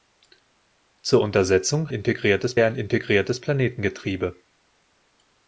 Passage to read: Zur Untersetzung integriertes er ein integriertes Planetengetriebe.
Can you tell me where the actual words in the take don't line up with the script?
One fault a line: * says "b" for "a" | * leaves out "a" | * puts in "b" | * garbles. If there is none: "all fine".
all fine